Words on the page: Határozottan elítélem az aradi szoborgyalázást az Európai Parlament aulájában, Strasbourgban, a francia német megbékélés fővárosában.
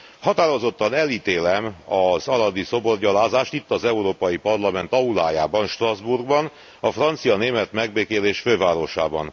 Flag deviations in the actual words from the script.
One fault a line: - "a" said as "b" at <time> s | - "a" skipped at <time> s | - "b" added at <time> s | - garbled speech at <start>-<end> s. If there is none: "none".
- "itt" added at 3.5 s